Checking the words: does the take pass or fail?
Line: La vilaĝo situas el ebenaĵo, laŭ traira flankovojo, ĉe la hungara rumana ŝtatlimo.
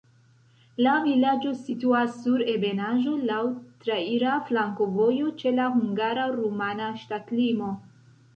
fail